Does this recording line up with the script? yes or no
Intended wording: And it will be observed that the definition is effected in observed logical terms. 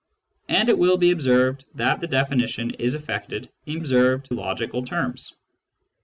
yes